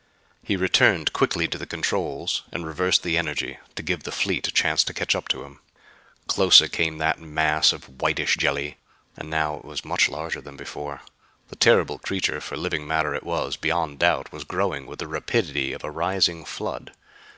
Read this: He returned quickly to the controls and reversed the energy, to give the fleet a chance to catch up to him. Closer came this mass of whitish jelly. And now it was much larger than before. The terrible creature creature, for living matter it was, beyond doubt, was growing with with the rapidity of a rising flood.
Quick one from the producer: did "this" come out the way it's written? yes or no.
no